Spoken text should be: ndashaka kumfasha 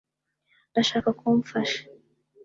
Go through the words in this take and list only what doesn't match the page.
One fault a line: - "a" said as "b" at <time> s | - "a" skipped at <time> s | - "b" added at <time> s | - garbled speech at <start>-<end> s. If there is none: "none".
none